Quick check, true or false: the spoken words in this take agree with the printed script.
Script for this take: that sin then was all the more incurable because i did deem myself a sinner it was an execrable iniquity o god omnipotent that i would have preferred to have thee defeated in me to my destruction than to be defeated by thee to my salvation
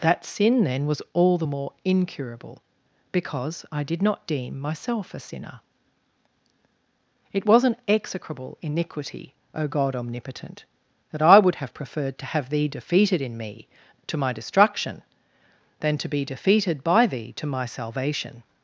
false